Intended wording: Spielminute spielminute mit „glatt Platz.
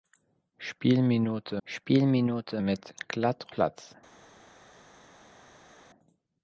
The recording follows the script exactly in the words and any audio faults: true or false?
true